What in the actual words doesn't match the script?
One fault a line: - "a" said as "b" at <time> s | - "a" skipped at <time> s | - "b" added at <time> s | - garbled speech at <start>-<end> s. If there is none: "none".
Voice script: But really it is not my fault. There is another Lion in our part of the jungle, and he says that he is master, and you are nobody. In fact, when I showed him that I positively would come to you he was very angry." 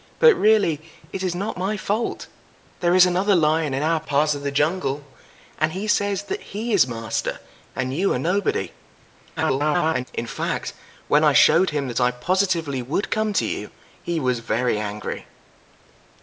- garbled speech at 9.4-10.0 s